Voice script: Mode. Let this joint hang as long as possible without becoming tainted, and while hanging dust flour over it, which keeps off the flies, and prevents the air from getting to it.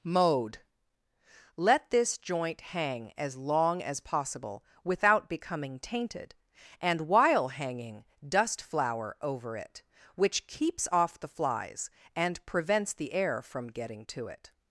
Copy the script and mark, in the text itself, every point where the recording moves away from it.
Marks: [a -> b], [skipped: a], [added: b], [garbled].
Mode. Let this joint hang as long as possible without becoming tainted, and while hanging dust flour over it, which keeps off the flies, and prevents the air from getting to it.